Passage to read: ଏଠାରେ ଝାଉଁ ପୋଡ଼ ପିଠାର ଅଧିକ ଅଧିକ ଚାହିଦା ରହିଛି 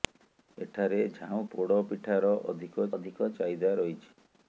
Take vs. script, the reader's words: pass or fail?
pass